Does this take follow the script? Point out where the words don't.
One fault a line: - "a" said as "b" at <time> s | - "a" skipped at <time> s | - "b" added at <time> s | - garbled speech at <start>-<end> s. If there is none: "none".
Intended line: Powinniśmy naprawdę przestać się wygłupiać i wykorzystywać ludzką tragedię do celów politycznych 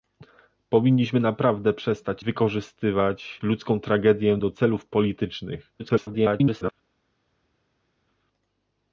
- "się wygłupiać i" skipped at 2.2 s
- garbled speech at 5.8-6.7 s